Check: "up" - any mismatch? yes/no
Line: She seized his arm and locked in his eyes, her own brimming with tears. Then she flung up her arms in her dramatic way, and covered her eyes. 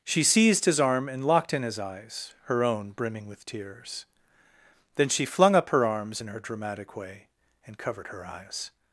no